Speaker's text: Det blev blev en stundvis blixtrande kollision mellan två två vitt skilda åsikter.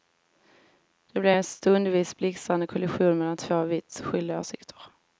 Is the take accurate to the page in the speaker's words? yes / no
no